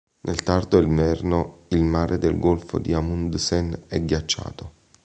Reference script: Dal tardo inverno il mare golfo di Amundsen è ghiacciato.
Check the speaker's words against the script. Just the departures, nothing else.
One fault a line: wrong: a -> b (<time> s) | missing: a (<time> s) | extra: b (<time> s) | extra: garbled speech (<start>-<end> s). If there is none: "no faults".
wrong: Dal -> Nel (0.2 s)
extra: del (2.2 s)